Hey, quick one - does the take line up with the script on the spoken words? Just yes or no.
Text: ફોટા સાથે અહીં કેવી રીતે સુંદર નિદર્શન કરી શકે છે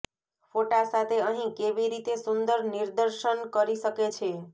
yes